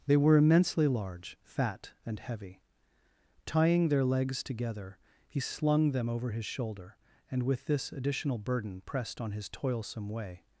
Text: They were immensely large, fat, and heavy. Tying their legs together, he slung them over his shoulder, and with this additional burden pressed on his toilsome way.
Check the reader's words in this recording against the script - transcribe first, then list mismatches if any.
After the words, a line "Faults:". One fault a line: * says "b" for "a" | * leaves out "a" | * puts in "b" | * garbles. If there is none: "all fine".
They were immensely large, fat, and heavy. Tying their legs together, he slung them over his shoulder, and with this additional burden pressed on his toilsome way.
Faults:
all fine